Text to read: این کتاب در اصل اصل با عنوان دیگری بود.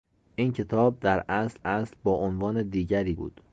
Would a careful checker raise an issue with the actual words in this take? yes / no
no